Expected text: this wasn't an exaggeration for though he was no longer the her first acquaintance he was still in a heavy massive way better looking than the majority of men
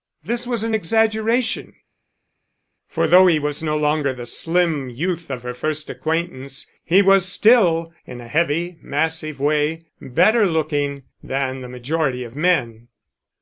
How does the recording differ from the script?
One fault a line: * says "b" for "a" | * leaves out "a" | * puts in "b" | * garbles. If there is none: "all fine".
* says "was" for "wasn't"
* puts in "slim youth of"